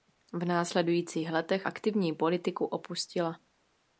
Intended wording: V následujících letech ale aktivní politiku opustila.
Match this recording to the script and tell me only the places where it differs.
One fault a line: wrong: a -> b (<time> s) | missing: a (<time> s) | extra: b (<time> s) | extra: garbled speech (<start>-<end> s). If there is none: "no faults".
missing: ale (1.7 s)